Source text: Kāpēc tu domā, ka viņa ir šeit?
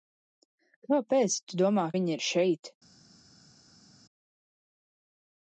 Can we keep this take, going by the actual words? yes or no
no